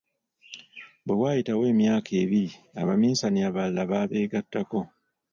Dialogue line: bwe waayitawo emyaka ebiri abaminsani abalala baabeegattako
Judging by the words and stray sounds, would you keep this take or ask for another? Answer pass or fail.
pass